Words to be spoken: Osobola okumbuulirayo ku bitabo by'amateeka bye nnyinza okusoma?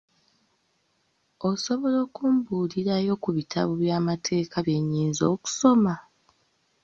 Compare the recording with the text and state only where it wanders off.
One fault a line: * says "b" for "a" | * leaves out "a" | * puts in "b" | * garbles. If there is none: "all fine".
all fine